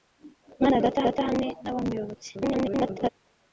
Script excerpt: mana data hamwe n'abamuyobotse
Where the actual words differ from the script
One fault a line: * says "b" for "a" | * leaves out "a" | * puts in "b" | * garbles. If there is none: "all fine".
* puts in "data"
* garbles